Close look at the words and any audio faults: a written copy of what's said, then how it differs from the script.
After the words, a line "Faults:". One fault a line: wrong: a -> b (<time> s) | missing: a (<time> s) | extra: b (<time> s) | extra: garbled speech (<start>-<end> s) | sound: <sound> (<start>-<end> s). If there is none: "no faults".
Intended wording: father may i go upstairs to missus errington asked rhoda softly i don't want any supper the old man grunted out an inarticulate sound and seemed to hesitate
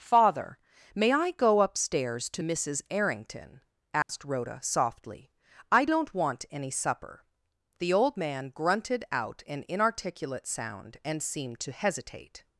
father may i go upstairs to missus errington asked rhoda softly i don't want any supper the old man grunted out an inarticulate sound and seemed to hesitate
Faults:
sound: dropout (4.0-4.1 s)